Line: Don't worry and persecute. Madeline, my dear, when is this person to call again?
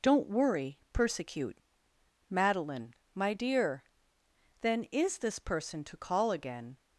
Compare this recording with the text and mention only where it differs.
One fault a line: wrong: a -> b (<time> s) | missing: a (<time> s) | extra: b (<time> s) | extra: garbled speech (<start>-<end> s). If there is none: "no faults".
missing: and (0.8 s)
wrong: when -> then (4.6 s)